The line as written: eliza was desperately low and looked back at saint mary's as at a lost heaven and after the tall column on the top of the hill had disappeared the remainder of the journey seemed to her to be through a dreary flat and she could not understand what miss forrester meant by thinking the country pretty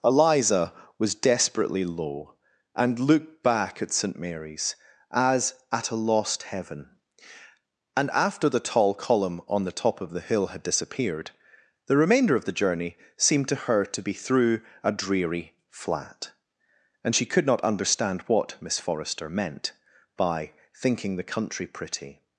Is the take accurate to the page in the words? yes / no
yes